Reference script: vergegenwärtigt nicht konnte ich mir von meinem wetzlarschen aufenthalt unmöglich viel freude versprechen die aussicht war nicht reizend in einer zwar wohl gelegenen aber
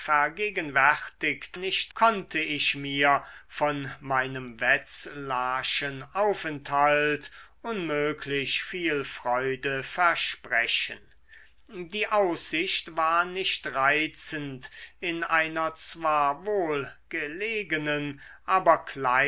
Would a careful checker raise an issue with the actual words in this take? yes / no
no